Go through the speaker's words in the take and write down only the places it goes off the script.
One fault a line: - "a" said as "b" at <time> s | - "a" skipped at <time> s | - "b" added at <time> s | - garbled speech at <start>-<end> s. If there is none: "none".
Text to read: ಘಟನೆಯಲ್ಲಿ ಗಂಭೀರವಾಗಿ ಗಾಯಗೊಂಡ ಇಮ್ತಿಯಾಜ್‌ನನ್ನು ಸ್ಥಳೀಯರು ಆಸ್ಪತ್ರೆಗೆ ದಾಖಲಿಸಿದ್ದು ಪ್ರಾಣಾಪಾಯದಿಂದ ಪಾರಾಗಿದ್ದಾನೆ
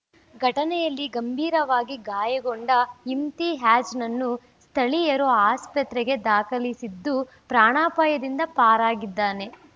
none